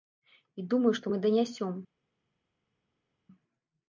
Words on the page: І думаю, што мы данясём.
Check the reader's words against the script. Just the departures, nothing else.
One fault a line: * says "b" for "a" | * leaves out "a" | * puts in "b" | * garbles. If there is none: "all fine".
all fine